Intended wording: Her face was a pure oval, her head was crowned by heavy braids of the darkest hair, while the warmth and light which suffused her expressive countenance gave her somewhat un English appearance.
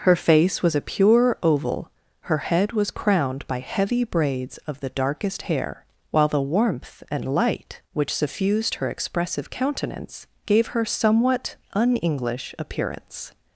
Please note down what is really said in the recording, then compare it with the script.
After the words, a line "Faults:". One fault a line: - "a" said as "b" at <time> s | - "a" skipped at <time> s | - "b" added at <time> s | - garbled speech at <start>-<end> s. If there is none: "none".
Her face was a pure oval, her head was crowned by heavy braids of the darkest hair, while the warmth and light which suffused her expressive countenance gave her somewhat un English appearance.
Faults:
none